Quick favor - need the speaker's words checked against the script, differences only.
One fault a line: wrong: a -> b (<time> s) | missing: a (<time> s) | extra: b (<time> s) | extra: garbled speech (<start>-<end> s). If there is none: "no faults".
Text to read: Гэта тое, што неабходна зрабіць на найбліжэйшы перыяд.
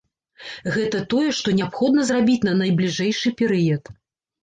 no faults